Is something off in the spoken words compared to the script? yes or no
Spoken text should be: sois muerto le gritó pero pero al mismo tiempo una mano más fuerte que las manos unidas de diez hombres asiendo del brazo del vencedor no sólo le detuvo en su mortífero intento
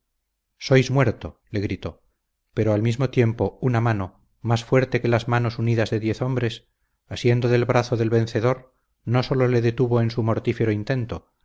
yes